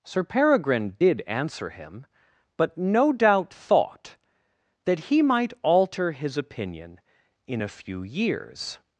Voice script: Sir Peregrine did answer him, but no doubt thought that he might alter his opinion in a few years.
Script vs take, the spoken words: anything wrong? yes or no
no